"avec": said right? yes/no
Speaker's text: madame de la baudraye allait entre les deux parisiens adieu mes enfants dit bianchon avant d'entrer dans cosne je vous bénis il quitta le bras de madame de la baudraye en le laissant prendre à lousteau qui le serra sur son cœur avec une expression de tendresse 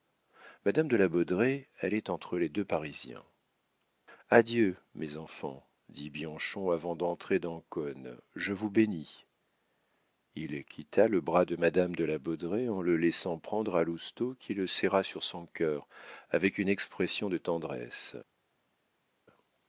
yes